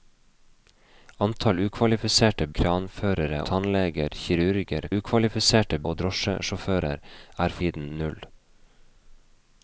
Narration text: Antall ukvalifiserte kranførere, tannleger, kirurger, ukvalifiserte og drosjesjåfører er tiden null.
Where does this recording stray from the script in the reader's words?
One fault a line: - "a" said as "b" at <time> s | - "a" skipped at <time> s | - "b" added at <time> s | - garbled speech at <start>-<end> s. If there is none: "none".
none